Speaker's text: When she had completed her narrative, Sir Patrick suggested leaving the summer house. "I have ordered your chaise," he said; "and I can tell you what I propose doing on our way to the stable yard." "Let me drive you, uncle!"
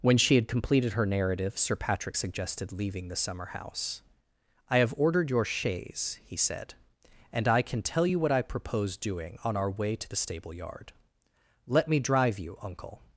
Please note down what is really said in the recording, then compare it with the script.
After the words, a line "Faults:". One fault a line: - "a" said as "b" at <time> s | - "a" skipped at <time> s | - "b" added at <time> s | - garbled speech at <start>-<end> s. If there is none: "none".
When she had completed her narrative, Sir Patrick suggested leaving the summer house. "I have ordered your chaise," he said; "and I can tell you what I propose doing on our way to the stable yard." "Let me drive you, uncle!"
Faults:
none